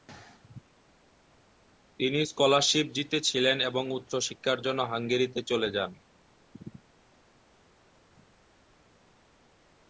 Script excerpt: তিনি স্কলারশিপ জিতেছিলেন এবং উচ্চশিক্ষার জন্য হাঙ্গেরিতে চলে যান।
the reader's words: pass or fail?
pass